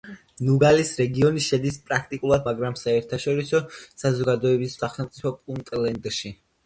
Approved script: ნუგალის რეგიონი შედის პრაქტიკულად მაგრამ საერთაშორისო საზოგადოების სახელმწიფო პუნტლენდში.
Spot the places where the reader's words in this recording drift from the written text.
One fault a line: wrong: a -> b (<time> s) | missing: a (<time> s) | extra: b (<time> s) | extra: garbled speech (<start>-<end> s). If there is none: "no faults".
no faults